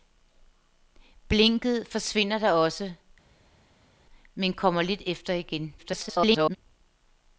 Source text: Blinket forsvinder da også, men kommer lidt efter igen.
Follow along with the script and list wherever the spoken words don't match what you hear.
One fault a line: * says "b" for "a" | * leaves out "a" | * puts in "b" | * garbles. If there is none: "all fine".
* garbles